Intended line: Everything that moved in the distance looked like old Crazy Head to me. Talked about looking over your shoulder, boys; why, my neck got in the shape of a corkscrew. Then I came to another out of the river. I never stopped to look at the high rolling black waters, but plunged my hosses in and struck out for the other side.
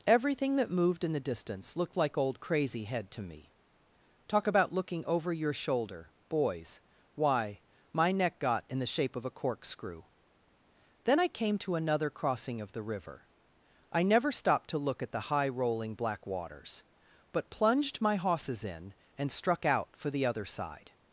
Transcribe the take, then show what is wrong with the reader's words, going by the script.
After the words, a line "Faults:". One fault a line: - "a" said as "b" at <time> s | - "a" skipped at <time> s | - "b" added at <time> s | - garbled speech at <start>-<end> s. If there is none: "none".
Everything that moved in the distance looked like old Crazy Head to me. Talk about looking over your shoulder, boys; why, my neck got in the shape of a corkscrew. Then I came to another crossing of the river. I never stopped to look at the high rolling black waters, but plunged my hosses in and struck out for the other side.
Faults:
- "Talked" said as "Talk" at 4.3 s
- "out" said as "crossing" at 12.1 s